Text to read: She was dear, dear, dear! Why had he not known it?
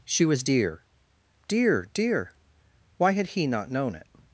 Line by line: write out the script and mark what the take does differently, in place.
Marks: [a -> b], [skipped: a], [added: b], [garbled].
She was dear, dear, dear! Why had he not known it?